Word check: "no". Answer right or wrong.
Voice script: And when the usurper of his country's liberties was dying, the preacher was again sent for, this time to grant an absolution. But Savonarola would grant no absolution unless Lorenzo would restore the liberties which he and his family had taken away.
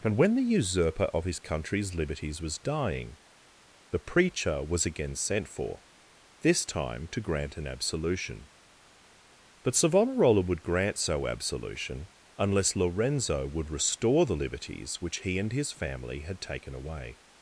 wrong